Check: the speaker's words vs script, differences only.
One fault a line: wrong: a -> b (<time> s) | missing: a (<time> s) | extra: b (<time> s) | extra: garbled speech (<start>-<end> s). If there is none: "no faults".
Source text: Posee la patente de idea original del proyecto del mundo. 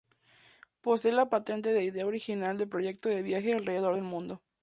extra: de viaje alrededor (3.1 s)